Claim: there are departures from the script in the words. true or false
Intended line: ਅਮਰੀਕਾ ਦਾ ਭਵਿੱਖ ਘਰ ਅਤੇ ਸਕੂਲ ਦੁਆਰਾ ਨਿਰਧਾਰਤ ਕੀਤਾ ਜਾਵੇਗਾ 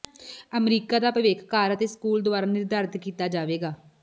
false